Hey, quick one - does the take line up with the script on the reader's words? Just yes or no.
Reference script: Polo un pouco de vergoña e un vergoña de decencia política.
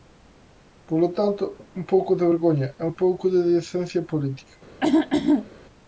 no